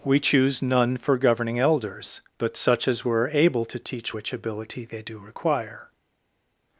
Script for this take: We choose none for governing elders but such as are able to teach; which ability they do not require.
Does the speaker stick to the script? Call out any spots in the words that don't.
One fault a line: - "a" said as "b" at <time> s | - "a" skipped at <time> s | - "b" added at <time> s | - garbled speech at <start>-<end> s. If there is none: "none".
- "are" said as "were" at 3.0 s
- "not" skipped at 5.2 s